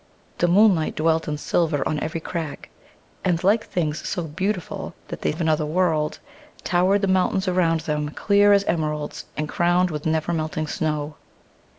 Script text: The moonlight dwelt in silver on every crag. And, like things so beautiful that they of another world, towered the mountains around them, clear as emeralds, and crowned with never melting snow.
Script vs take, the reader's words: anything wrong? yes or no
no